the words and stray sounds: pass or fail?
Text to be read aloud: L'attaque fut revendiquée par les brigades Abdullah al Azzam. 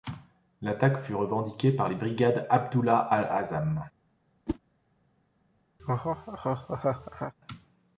fail